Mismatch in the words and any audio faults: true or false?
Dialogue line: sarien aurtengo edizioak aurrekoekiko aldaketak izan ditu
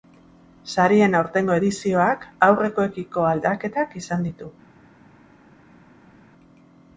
false